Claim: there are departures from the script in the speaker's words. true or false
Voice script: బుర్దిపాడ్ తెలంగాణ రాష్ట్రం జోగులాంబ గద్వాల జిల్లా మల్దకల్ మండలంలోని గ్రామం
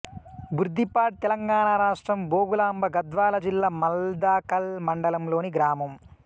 false